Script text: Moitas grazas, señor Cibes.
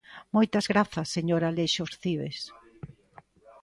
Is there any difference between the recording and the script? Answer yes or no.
yes